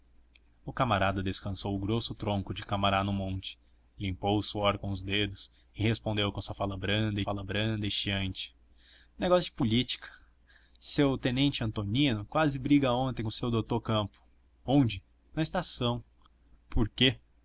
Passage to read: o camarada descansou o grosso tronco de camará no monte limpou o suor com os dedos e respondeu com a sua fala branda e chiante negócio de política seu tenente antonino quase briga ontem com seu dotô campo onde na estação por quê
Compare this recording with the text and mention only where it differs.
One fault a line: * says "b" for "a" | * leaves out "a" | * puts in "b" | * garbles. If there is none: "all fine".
* puts in "fala branda"